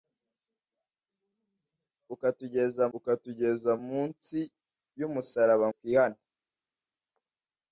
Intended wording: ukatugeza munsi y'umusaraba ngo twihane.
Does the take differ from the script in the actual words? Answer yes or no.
yes